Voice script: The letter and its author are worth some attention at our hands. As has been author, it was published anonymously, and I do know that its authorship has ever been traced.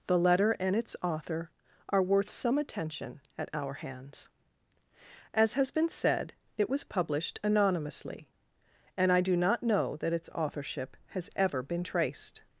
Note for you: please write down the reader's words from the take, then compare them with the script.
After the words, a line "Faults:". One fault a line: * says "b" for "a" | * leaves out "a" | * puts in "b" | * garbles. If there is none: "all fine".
The letter and its author are worth some attention at our hands. As has been said, it was published anonymously, and I do not know that its authorship has ever been traced.
Faults:
* says "said" for "author"
* puts in "not"